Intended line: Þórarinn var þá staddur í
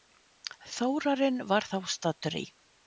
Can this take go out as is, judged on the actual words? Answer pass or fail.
pass